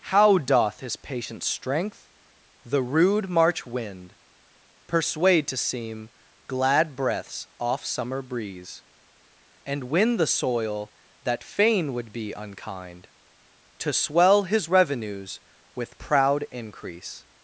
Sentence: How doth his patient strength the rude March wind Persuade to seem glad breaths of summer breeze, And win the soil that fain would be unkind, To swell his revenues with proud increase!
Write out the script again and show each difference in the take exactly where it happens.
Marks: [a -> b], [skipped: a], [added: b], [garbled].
How doth his patient strength the rude March wind Persuade to seem glad breaths [of -> off] summer breeze, And win the soil that fain would be unkind, To swell his revenues with proud increase!